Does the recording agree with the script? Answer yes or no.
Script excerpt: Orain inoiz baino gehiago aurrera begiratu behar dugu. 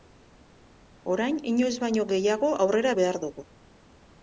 no